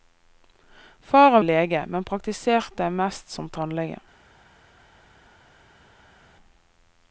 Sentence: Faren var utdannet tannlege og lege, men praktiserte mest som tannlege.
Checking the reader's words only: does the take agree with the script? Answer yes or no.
no